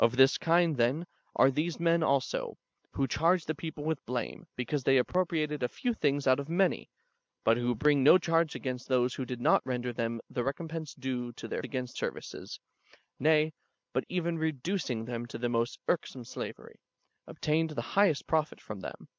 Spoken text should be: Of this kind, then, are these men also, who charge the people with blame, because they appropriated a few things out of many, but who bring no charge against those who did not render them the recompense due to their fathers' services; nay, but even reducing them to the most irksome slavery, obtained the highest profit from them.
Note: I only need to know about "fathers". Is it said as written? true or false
false